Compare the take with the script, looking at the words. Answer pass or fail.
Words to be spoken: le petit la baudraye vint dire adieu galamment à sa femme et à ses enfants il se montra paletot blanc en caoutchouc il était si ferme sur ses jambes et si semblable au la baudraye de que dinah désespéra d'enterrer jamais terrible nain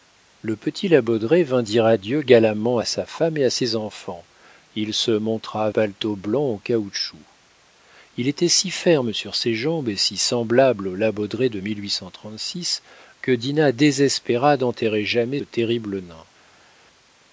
pass